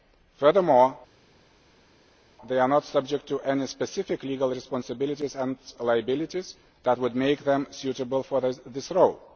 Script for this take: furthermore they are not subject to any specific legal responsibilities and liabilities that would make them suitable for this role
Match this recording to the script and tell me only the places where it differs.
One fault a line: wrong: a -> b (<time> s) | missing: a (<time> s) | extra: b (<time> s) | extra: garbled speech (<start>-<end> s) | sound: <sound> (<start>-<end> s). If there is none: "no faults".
no faults